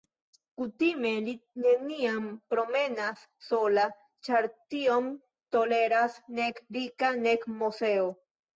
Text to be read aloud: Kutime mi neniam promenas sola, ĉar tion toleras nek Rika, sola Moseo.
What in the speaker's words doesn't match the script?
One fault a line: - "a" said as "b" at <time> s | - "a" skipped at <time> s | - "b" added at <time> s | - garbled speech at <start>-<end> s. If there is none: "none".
- "mi" said as "li" at 1.2 s
- "sola" said as "nek" at 7.3 s